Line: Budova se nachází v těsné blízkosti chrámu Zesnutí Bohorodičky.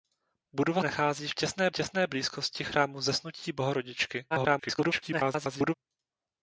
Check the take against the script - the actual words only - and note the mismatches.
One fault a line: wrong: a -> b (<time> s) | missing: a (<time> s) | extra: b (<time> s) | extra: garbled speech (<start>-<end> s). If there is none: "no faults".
missing: se (0.8 s)
extra: těsné (1.7 s)
extra: garbled speech (4.3-5.7 s)